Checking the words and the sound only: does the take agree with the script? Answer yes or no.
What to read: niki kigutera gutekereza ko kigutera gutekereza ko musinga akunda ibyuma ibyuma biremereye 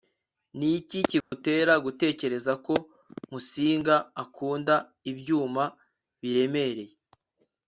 no